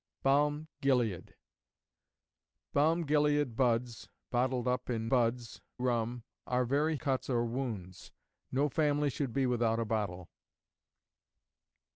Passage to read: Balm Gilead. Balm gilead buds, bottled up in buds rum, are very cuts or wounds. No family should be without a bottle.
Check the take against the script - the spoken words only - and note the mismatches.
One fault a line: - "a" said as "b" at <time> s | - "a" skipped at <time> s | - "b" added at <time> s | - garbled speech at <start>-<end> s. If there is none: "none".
none